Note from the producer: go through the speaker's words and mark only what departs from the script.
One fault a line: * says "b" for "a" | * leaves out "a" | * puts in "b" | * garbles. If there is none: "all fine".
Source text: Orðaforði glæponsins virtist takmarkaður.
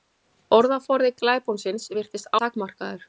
all fine